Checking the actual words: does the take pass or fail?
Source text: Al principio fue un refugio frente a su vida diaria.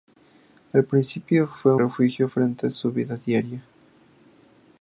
fail